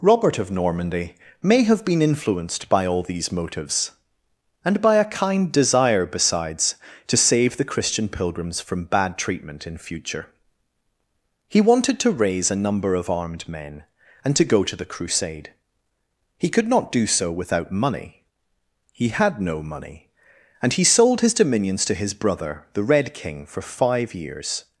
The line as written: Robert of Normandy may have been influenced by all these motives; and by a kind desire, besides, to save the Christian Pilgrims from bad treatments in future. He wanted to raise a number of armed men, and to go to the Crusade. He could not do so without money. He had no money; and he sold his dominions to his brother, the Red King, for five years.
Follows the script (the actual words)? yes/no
no